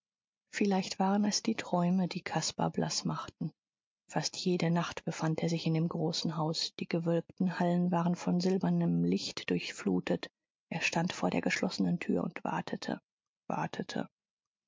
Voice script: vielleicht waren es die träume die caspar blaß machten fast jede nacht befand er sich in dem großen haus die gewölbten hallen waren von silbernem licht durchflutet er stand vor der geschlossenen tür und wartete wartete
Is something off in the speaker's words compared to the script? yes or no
no